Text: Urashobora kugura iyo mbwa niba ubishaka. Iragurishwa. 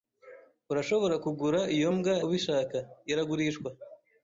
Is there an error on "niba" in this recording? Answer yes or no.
yes